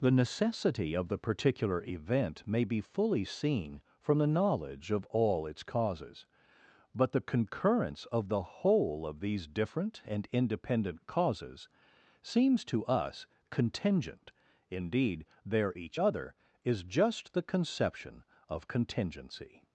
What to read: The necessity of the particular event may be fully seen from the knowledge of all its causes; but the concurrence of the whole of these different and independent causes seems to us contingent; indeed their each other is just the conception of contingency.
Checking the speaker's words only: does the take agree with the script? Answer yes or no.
yes